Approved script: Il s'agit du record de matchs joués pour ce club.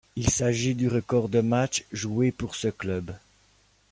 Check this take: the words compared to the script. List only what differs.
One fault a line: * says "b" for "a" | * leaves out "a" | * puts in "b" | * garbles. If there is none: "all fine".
all fine